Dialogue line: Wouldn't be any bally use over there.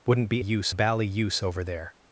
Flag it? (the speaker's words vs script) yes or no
yes